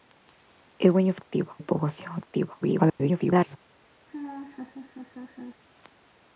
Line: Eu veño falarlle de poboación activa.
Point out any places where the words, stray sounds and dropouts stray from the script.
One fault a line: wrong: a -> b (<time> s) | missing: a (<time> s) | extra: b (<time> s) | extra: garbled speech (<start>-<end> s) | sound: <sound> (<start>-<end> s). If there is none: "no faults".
wrong: falarlle -> activa (1.2 s)
extra: garbled speech (2.6-3.6 s)
sound: laugh (4.1-5.6 s)